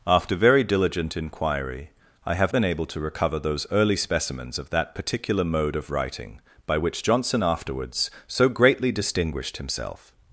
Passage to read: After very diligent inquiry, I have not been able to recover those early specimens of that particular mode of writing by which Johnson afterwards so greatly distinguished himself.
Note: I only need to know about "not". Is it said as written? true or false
false